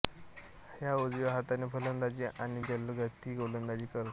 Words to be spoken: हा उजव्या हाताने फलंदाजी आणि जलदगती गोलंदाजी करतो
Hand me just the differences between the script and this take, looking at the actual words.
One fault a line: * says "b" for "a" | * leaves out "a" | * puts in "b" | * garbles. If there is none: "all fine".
all fine